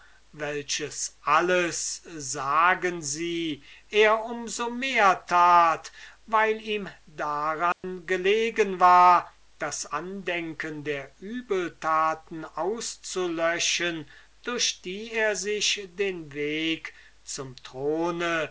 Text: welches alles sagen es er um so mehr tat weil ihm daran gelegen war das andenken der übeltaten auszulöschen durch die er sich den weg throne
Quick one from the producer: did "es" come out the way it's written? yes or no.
no